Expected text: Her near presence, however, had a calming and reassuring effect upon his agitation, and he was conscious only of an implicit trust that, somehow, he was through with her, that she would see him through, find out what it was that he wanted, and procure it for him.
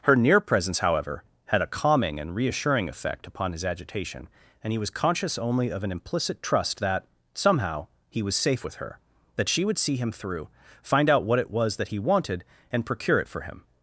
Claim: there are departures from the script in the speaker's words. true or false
true